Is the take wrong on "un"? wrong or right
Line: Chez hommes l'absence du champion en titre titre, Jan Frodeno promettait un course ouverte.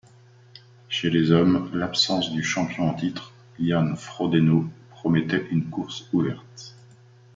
wrong